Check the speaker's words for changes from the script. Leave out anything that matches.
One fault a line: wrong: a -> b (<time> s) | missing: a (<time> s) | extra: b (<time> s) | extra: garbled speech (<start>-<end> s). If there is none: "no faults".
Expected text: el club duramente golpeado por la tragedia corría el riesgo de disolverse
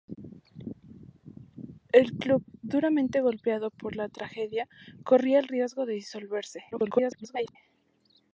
extra: garbled speech (6.7-7.6 s)